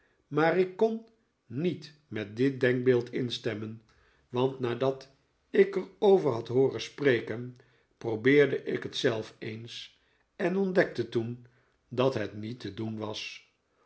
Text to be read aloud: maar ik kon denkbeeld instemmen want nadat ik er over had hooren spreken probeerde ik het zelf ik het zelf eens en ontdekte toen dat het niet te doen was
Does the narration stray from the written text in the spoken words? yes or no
yes